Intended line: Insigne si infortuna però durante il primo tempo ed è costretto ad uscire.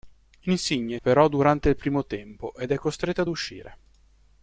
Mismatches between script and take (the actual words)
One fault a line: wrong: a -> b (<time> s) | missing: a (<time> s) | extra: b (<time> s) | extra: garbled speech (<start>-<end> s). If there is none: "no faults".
missing: si infortuna (1.0 s)